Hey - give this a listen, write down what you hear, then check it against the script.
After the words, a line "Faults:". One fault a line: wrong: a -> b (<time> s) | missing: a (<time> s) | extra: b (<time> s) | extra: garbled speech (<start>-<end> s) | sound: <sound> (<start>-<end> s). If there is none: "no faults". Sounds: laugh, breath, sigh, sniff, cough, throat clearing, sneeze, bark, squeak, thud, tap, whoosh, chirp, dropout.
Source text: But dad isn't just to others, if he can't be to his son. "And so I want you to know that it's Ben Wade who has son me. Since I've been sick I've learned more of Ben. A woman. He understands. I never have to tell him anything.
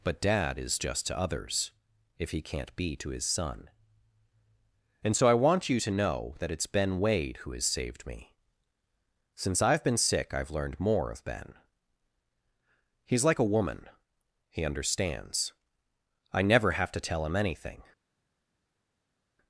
But dad is just to others, if he can't be to his son. "And so I want you to know that it's Ben Wade who has saved me. Since I've been sick I've learned more of Ben. He's like a woman. He understands. I never have to tell him anything.
Faults:
wrong: isn't -> is (0.6 s)
wrong: son -> saved (7.7 s)
extra: He's like (13.0 s)